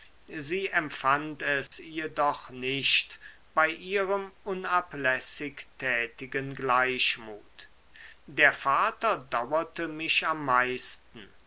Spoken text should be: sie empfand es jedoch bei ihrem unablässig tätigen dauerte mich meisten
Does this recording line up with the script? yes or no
no